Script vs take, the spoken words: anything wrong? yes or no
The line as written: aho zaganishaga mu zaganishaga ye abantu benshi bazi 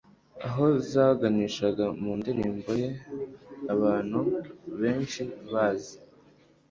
yes